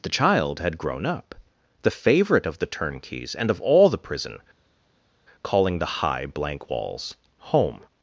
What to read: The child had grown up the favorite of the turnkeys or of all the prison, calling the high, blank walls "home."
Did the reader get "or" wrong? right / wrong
wrong